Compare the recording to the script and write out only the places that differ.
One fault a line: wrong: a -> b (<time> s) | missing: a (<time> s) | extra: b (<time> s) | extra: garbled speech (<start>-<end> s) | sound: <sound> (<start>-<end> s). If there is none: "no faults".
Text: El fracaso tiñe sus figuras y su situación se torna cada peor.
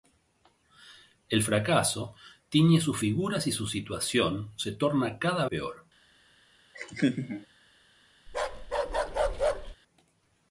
sound: laugh (6.7-7.5 s)
sound: bark (8.3-9.8 s)